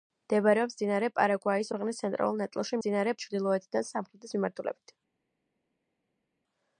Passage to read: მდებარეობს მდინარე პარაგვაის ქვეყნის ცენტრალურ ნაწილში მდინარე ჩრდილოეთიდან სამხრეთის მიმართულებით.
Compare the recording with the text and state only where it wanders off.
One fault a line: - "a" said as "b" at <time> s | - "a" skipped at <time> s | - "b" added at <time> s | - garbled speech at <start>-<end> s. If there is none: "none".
none